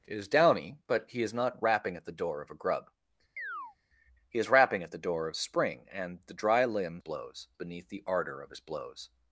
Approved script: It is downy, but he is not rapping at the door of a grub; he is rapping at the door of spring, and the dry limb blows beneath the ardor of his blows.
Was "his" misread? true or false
false